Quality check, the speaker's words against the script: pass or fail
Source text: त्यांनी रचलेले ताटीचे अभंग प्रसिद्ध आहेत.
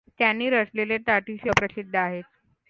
fail